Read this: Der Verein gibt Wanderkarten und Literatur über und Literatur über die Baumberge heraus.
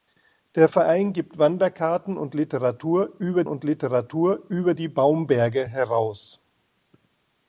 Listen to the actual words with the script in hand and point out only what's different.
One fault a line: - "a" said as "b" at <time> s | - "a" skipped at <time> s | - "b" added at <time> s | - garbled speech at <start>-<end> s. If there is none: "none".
none